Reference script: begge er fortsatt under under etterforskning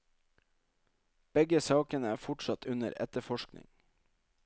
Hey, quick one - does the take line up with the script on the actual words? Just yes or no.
no